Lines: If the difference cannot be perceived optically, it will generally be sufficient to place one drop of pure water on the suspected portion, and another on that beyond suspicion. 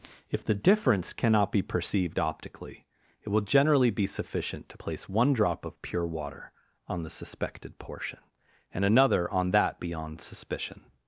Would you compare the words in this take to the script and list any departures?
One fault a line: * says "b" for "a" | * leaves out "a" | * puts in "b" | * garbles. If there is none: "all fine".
all fine